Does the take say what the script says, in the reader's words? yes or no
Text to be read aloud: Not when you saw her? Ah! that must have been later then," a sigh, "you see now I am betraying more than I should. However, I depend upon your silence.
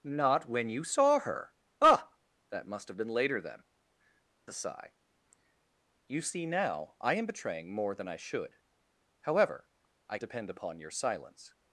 yes